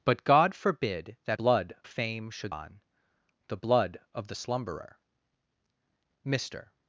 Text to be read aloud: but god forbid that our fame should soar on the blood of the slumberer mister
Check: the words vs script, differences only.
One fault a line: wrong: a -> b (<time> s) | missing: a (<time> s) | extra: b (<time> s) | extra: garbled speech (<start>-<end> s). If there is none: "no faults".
wrong: our -> blood (1.3 s)
missing: soar (2.5 s)